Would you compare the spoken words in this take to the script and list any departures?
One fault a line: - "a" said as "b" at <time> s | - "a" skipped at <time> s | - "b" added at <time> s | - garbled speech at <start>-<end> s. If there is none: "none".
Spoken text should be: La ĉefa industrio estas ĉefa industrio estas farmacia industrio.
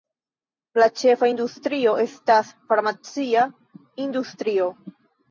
- "ĉefa industrio estas" skipped at 2.5 s